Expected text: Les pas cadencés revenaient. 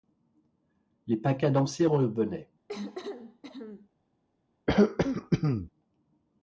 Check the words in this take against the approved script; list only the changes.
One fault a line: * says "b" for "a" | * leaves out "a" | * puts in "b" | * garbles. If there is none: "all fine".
all fine